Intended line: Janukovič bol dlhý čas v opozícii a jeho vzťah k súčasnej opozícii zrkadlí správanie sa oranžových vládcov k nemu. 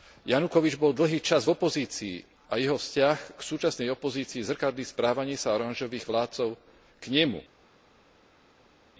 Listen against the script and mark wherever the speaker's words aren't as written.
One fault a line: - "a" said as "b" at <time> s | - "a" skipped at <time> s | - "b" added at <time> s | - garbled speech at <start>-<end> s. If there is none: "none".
none